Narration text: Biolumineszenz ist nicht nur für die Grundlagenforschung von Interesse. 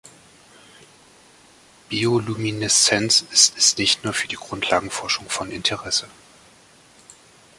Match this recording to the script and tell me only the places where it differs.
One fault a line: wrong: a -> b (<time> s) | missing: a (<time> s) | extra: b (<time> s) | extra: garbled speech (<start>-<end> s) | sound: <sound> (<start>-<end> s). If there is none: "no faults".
extra: ist (3.6 s)